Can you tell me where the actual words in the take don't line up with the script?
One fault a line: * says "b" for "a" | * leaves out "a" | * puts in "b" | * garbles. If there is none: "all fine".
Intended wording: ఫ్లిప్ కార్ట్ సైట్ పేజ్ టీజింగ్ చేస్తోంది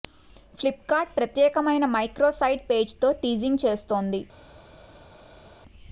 * puts in "ప్రత్యేకమైన మైక్రో"
* puts in "తో"